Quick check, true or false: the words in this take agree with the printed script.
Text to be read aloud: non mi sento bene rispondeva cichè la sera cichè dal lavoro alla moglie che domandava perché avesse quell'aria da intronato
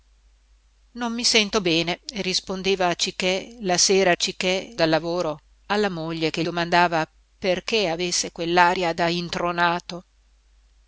true